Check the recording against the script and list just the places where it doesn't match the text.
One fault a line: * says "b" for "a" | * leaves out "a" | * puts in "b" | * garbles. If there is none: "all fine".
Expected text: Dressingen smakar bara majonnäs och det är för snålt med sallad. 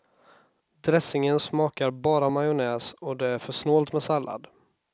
all fine